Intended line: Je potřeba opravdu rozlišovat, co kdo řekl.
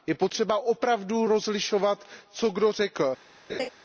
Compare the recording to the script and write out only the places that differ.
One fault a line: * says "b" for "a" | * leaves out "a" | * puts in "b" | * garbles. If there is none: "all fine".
all fine